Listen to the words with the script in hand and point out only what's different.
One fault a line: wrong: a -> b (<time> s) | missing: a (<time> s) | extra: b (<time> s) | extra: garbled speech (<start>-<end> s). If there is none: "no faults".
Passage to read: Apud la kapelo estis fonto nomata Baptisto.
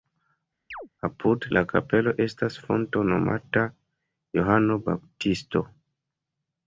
wrong: estis -> estas (2.2 s)
extra: Johano (4.4 s)